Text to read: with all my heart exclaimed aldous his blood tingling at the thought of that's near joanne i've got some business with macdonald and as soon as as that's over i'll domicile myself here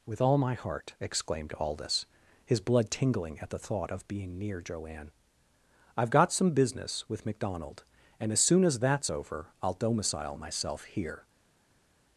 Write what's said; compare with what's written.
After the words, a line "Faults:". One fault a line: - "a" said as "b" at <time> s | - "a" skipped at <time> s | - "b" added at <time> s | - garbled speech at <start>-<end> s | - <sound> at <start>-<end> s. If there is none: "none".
with all my heart exclaimed aldous his blood tingling at the thought of being near joanne i've got some business with macdonald and as soon as that's over i'll domicile myself here
Faults:
- "that's" said as "being" at 4.1 s
- "as" skipped at 8.8 s